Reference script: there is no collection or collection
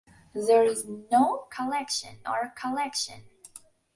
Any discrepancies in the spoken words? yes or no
no